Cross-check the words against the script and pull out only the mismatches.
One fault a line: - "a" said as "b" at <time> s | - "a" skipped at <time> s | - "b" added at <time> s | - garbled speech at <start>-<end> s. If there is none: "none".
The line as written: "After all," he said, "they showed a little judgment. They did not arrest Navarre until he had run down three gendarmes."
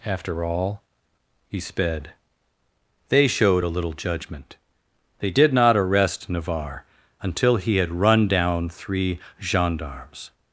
- "said" said as "sped" at 1.6 s